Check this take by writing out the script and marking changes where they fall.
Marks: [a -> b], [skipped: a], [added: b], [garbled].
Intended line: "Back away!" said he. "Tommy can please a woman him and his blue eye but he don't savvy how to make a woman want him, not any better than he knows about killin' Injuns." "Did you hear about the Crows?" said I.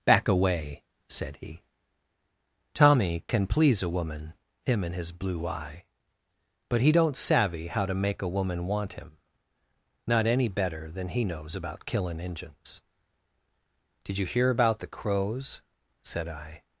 "Back away!" said he. "Tommy can please a woman him and his blue eye but he don't savvy how to make a woman want him, not any better than he knows about killin' Injuns." "Did you hear about the Crows?" said I.